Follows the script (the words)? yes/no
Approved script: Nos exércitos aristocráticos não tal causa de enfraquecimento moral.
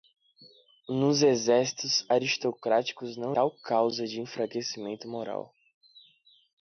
yes